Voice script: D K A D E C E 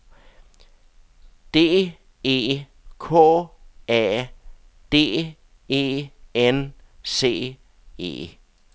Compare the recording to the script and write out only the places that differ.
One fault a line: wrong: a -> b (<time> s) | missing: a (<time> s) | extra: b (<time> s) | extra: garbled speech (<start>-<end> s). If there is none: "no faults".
extra: E (2.2 s)
extra: N (6.3 s)